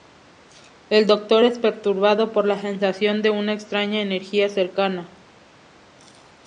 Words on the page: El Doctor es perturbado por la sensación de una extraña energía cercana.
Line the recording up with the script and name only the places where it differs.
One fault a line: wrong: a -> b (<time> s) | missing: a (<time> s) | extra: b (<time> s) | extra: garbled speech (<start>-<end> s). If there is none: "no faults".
no faults